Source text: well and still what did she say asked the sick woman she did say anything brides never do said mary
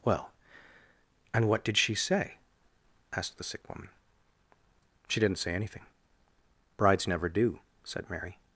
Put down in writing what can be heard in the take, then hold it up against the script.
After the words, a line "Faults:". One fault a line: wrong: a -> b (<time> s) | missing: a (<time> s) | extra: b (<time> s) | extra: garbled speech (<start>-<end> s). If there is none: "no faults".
well and what did she say asked the sick woman she didn't say anything brides never do said mary
Faults:
missing: still (1.5 s)
wrong: did -> didn't (5.2 s)